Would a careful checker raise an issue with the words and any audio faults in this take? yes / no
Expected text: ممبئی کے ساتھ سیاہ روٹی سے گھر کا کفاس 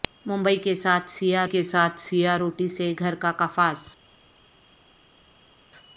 yes